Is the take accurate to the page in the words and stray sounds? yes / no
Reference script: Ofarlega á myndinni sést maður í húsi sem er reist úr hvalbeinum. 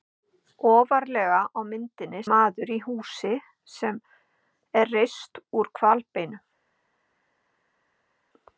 no